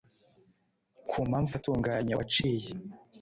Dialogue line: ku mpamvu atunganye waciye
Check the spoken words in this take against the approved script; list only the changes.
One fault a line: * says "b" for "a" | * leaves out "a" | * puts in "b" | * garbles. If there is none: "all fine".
all fine